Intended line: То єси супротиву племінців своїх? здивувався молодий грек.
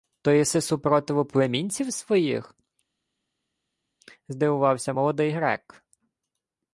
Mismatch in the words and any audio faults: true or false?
false